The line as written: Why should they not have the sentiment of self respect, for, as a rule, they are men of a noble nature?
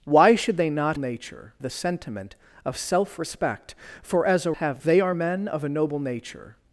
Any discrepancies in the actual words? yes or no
yes